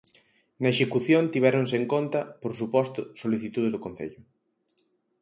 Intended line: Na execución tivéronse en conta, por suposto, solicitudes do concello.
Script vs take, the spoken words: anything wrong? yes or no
no